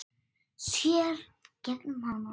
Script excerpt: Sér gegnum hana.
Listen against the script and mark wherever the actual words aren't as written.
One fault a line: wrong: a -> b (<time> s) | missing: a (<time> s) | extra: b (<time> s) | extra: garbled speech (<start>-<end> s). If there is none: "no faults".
no faults